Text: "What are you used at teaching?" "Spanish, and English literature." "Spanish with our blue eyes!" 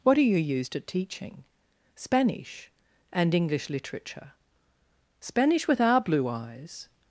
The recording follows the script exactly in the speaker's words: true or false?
true